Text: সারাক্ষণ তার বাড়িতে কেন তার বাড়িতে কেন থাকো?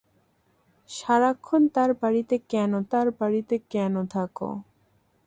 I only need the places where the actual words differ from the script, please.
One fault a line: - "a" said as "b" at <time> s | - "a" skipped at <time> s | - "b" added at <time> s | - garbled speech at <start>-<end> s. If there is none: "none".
none